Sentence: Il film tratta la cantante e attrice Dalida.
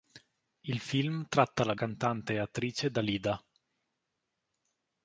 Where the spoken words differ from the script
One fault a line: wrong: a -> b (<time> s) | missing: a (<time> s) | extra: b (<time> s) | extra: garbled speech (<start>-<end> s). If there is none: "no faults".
no faults